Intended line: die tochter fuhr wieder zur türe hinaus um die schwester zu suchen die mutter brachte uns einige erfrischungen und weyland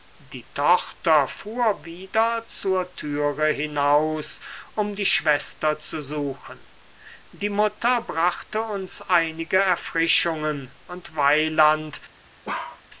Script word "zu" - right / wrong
right